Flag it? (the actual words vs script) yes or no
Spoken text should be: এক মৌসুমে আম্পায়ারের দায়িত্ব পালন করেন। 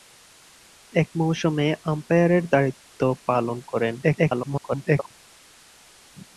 yes